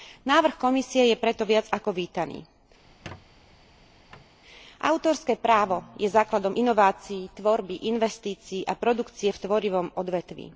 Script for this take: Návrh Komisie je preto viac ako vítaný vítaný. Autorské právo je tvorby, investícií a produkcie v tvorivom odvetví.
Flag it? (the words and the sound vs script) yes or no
yes